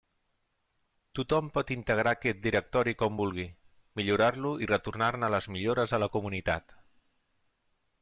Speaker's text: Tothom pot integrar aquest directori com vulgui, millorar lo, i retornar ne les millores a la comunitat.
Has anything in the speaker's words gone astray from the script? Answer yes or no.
no